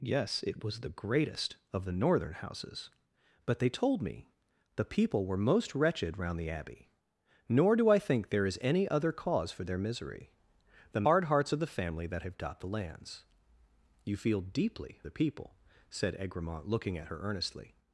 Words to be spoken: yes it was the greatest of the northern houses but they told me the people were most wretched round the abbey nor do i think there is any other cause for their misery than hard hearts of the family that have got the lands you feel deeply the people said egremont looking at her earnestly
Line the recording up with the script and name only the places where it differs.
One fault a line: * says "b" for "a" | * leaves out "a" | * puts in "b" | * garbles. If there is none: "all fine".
all fine